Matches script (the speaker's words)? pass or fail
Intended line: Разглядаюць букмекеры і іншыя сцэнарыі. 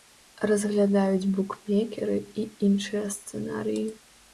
pass